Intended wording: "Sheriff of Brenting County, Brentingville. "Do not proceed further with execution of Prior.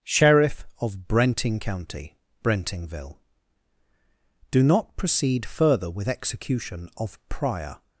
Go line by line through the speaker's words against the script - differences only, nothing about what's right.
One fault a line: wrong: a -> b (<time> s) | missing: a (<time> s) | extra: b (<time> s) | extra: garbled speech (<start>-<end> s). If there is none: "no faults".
no faults